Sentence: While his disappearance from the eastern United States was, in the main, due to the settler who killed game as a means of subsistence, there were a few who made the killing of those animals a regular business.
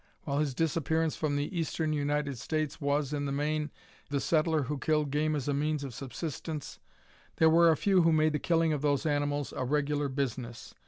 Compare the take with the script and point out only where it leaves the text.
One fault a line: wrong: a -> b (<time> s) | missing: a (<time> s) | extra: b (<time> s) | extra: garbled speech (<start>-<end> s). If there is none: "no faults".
missing: due to (3.7 s)